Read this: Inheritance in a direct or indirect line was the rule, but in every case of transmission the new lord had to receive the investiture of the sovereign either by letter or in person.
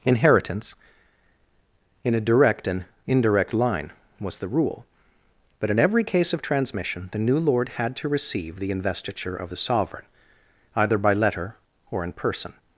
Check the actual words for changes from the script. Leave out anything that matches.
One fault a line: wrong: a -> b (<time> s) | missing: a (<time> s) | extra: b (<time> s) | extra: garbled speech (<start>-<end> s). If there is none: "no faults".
wrong: or -> and (2.7 s)